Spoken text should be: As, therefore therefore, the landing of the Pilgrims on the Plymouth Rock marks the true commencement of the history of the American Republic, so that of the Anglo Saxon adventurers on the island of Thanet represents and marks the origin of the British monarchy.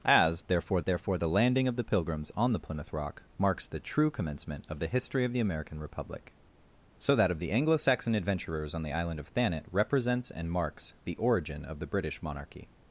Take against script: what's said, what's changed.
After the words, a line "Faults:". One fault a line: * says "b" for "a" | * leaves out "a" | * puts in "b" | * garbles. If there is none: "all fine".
As, therefore therefore, the landing of the Pilgrims on the Plymouth Rock marks the true commencement of the history of the American Republic, so that of the Anglo Saxon adventurers on the island of Thanet represents and marks the origin of the British monarchy.
Faults:
all fine